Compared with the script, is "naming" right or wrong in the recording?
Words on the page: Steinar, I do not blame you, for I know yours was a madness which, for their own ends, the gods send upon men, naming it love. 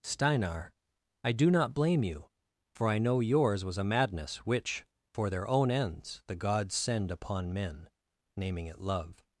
right